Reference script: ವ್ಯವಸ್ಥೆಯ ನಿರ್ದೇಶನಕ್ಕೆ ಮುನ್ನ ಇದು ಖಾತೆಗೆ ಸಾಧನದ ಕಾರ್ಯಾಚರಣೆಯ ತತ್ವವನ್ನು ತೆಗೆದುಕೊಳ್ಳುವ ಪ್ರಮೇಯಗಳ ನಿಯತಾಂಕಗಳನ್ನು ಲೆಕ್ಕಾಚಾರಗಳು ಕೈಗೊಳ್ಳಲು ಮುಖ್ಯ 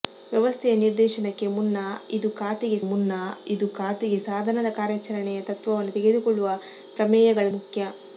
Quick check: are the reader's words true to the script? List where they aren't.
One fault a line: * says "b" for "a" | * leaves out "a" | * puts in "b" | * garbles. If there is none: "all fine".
* puts in "ಮುನ್ನ ಇದು ಖಾತೆಗೆ"
* leaves out "ನಿಯತಾಂಕಗಳನ್ನು ಲೆಕ್ಕಾಚಾರಗಳು ಕೈಗೊಳ್ಳಲು"